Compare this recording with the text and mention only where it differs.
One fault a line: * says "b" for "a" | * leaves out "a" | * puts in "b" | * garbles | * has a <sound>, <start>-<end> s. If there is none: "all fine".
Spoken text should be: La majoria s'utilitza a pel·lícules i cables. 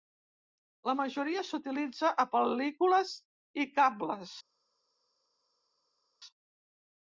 all fine